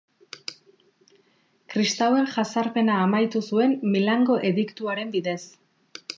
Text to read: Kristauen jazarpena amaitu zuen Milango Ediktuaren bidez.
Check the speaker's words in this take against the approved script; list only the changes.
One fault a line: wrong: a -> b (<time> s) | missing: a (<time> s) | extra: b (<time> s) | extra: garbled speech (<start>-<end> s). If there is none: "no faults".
no faults